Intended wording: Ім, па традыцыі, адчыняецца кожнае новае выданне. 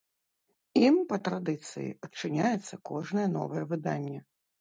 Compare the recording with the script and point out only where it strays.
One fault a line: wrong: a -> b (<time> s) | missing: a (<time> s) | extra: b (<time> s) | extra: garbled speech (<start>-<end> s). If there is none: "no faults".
no faults